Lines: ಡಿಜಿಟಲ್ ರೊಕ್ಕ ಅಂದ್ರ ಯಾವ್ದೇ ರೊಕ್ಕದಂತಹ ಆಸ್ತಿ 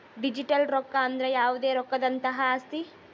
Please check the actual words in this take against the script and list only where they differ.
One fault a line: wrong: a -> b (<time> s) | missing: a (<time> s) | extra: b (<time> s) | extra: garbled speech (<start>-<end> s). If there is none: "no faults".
no faults